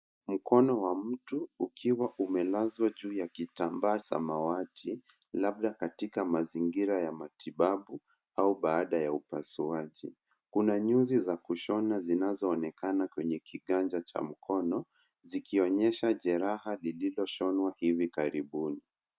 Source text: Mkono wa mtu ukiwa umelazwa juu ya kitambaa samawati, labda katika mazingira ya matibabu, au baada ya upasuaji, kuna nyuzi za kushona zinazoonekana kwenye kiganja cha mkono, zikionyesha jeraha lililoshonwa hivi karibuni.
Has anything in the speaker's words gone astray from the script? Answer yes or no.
no